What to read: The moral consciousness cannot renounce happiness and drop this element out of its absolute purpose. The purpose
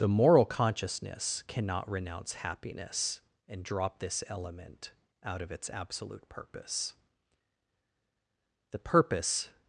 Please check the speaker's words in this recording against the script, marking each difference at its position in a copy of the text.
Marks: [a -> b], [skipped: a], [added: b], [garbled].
The moral consciousness cannot renounce happiness and drop this element out of its absolute purpose. The purpose